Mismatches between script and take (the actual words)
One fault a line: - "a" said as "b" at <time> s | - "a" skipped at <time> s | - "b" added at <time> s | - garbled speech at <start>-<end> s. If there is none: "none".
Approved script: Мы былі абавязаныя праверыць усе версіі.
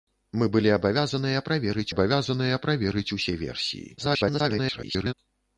- "абавязаныя праверыць" added at 1.9 s
- garbled speech at 4.0-5.1 s